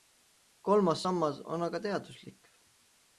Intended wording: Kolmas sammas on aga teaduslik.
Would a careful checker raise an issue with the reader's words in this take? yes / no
no